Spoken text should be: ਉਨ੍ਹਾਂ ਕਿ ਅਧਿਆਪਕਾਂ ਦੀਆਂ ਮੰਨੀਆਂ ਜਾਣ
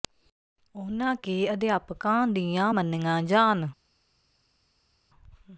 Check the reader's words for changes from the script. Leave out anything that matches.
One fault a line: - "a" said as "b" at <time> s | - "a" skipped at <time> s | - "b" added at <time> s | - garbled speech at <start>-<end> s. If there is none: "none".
none